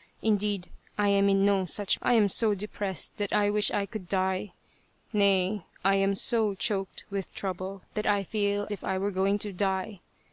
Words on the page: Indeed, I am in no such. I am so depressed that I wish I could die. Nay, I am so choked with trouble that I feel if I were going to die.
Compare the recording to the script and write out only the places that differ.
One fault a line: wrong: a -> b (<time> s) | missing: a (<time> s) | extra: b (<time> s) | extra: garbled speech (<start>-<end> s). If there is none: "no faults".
no faults